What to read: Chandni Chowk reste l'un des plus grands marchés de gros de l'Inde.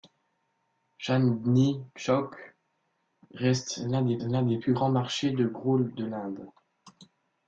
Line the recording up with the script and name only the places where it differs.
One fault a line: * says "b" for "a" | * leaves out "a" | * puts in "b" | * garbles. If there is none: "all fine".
* puts in "l'un des"